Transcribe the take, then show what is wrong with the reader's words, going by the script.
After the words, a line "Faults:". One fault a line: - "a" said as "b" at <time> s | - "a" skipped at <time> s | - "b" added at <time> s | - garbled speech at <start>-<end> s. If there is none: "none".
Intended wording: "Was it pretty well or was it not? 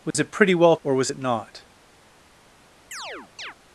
"Was it pretty well or was it not?
Faults:
none